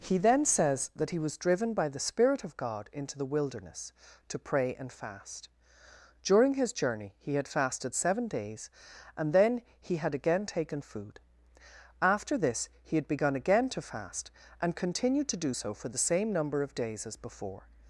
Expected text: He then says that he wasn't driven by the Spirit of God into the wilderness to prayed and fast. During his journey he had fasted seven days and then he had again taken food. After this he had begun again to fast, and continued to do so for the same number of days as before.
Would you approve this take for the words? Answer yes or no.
no